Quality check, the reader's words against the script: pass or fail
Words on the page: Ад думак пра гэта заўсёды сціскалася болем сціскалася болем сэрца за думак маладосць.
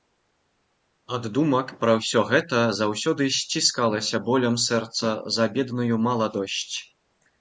fail